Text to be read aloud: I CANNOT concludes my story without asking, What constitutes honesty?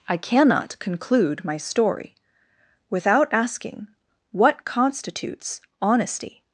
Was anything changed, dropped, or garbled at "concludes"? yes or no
yes